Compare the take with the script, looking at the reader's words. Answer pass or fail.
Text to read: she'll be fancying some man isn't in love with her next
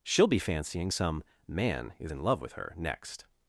fail